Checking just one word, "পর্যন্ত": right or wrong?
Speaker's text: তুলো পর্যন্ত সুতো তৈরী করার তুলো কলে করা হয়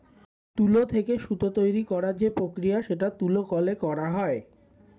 wrong